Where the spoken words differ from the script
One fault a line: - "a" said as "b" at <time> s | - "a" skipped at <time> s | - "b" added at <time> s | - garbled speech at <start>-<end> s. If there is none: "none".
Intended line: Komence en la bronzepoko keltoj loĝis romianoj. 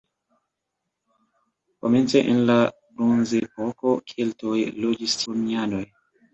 none